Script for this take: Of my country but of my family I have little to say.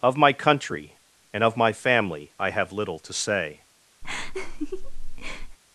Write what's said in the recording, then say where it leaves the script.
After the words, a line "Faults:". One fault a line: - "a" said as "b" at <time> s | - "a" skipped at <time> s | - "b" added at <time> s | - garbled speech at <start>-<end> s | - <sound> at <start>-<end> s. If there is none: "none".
Of my country and of my family I have little to say.
Faults:
- "but" said as "and" at 1.3 s
- laugh at 4.0-5.6 s